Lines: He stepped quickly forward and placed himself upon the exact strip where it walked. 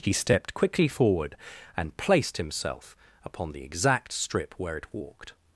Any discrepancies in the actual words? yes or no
no